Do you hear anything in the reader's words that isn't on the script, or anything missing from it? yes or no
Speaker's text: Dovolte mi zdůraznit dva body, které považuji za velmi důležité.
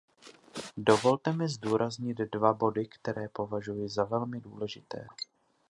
no